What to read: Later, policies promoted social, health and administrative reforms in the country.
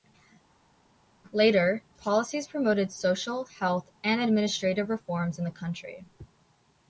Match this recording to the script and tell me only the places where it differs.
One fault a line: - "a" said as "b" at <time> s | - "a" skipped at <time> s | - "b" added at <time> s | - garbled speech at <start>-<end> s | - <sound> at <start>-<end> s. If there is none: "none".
none